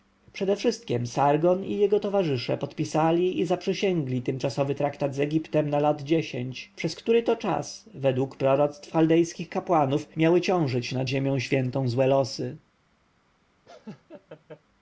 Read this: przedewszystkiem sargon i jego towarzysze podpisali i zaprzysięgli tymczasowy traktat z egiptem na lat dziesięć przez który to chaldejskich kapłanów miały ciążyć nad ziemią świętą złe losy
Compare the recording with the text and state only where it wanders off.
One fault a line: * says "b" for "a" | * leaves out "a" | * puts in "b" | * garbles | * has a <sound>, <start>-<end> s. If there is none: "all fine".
* puts in "czas według proroctw"
* has a laugh, 13.7-14.6 s